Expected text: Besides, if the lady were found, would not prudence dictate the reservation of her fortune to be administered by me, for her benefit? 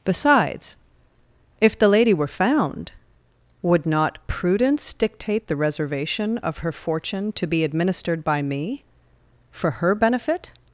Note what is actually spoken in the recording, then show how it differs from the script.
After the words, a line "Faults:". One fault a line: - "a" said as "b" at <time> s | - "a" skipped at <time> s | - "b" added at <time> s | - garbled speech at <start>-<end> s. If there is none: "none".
Besides, if the lady were found, would not prudence dictate the reservation of her fortune to be administered by me, for her benefit?
Faults:
none